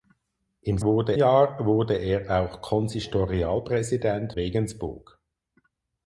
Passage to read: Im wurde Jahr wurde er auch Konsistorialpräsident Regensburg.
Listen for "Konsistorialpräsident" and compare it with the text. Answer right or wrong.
right